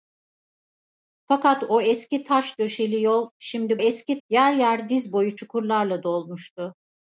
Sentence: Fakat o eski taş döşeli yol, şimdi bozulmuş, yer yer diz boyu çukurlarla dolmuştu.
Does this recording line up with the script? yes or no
no